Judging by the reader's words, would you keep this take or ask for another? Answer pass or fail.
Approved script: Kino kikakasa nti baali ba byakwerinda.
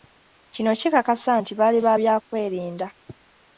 pass